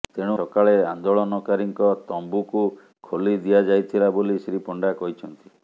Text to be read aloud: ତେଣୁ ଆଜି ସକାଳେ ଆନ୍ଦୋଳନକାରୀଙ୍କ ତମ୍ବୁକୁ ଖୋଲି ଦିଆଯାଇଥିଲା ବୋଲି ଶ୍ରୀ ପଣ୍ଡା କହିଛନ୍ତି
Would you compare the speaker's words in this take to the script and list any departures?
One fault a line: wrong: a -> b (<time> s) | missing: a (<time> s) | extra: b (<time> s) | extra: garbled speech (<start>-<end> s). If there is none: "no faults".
missing: ଆଜି (0.3 s)